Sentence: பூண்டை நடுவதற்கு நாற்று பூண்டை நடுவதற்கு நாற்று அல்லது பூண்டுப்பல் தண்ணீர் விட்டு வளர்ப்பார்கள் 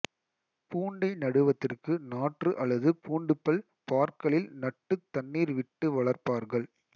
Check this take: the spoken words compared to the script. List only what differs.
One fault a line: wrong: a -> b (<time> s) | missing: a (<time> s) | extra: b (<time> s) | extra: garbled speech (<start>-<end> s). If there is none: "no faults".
wrong: பூண்டை நடுவதற்கு நாற்று அல்லது பூண்டுப்பல் -> அல்லது பூண்டுப்பல் பார்களில் நட்டுத் (2.6 s)